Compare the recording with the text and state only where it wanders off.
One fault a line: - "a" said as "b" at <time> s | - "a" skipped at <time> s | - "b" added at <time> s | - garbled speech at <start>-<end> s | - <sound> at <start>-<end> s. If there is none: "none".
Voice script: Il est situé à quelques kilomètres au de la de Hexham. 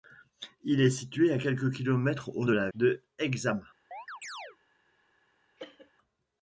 - chirp at 3.9-4.6 s
- cough at 5.6-5.9 s